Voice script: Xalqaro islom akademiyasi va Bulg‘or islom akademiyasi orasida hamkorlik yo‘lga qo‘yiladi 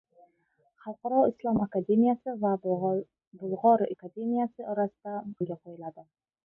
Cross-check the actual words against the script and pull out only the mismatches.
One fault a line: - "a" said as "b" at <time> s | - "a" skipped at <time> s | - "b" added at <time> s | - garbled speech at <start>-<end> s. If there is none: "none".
- "islom" skipped at 3.9 s
- "hamkorlik" skipped at 5.2 s